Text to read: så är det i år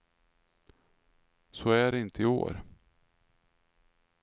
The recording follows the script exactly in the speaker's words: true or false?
false